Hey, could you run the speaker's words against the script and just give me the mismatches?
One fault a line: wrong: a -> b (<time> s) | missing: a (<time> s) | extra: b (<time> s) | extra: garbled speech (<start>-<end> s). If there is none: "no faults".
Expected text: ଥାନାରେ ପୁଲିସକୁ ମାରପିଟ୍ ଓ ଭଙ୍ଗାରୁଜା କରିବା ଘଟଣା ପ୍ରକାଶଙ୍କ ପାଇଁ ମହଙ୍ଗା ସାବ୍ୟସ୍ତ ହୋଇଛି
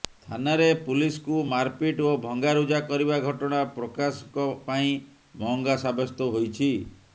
no faults